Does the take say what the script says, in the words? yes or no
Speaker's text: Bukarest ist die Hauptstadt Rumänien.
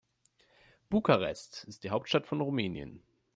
no